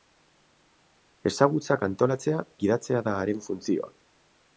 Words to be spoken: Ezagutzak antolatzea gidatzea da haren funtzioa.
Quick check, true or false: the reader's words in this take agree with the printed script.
true